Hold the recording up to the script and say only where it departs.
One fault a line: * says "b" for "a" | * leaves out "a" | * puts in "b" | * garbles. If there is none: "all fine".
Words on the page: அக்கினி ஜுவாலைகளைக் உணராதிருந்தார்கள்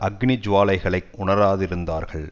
all fine